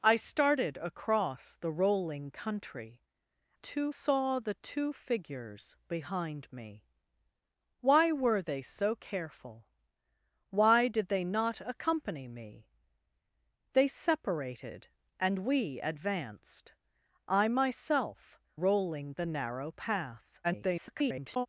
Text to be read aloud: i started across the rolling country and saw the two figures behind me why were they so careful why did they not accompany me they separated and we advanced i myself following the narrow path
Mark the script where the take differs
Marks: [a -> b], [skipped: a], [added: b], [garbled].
i started across the rolling country [and -> two] saw the two figures behind me why were they so careful why did they not accompany me they separated and we advanced i myself [following -> rolling] the narrow path [garbled]